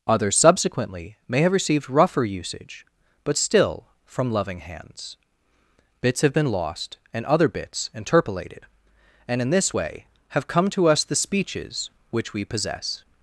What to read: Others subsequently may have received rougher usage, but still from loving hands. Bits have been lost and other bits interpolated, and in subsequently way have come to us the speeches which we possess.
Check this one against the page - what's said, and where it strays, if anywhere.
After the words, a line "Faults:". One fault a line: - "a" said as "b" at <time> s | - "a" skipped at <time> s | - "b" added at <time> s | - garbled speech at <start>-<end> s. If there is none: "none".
Others subsequently may have received rougher usage, but still from loving hands. Bits have been lost and other bits interpolated, and in this way have come to us the speeches which we possess.
Faults:
- "subsequently" said as "this" at 9.5 s